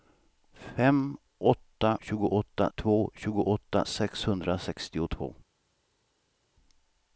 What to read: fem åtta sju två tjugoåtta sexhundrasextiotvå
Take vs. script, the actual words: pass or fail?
fail